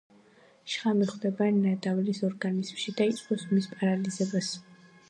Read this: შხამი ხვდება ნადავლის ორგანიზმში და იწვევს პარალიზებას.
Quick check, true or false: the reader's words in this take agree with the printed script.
false